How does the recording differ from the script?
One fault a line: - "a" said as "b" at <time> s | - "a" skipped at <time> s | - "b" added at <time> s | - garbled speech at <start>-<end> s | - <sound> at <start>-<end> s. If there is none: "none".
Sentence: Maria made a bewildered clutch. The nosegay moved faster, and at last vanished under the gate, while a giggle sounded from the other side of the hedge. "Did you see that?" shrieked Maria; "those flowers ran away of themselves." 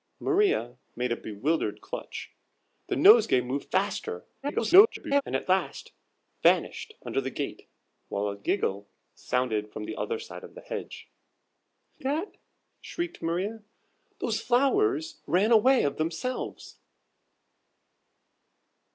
- garbled speech at 4.4-5.2 s
- "Did you see" skipped at 11.1 s